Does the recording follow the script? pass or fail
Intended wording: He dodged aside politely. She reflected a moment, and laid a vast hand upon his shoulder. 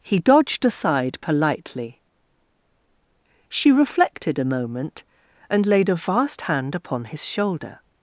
pass